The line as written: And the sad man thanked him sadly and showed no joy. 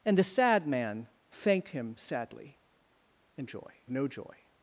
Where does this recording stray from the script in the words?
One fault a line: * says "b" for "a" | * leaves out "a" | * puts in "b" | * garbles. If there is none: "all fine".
* says "joy" for "showed"